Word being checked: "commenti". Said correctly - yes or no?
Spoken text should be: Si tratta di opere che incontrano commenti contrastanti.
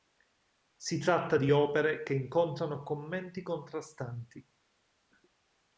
yes